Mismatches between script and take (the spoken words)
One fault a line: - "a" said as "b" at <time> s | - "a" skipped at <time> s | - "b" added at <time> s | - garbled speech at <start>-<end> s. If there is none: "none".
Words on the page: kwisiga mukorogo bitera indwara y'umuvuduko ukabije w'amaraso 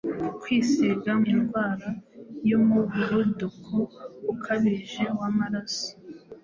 - "mukorogo bitera" skipped at 1.1 s